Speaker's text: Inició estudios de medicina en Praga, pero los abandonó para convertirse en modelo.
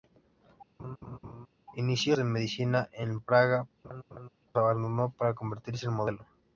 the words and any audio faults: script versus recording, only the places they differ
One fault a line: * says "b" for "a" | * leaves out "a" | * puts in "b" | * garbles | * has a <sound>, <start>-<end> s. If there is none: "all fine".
* has a laugh, 0.8-1.5 s
* leaves out "estudios"
* leaves out "pero los"
* has a laugh, 3.8-4.3 s